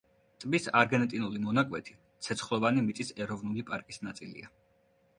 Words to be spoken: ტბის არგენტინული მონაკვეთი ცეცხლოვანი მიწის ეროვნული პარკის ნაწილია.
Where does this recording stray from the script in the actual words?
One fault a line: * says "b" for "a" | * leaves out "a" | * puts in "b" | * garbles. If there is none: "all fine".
all fine